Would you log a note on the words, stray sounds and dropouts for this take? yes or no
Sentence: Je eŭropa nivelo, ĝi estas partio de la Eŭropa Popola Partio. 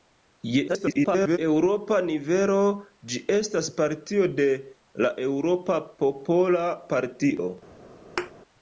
yes